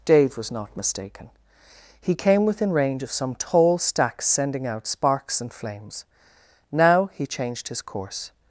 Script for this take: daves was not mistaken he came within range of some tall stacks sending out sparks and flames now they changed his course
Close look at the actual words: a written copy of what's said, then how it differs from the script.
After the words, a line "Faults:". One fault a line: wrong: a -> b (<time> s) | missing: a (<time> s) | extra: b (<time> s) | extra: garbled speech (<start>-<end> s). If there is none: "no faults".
dave was not mistaken he came within range of some tall stacks sending out sparks and flames now he changed his course
Faults:
wrong: daves -> dave (0.1 s)
wrong: they -> he (7.1 s)